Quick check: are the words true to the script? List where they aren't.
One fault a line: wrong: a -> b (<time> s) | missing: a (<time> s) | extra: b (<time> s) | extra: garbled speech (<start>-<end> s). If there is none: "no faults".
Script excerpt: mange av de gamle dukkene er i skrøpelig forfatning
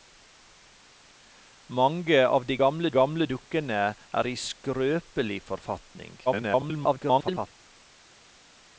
extra: gamle (3.0 s)
extra: garbled speech (6.3-7.5 s)